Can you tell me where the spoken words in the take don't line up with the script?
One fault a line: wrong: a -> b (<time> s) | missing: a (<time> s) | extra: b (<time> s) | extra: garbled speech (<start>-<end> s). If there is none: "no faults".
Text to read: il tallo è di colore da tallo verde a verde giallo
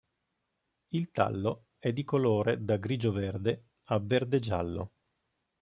wrong: tallo -> grigio (2.8 s)